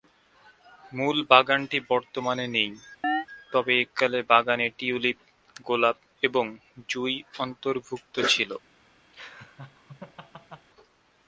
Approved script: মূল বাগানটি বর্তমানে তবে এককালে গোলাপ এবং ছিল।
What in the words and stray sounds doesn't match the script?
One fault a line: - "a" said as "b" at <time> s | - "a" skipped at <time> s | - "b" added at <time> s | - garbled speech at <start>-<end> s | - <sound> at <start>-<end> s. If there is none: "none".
- "নেই" added at 2.5 s
- chirp at 3.0-3.3 s
- "বাগানে টিউলিপ" added at 4.3 s
- "জুঁই অন্তর্ভুক্ত" added at 6.9 s
- laugh at 9.1-10.7 s